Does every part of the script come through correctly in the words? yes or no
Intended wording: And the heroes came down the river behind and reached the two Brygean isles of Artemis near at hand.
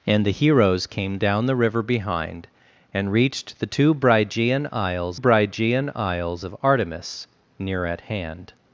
no